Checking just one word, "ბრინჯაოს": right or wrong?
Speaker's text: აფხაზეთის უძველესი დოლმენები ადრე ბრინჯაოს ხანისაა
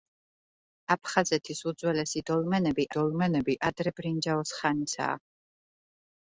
right